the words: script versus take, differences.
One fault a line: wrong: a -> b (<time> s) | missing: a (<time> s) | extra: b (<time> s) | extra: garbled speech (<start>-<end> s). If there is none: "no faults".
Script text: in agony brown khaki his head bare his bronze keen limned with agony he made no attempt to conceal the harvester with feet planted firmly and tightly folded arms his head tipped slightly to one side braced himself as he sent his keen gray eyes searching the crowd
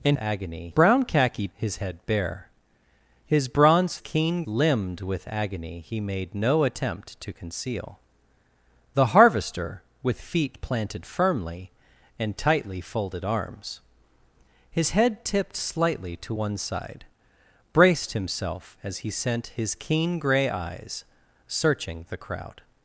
no faults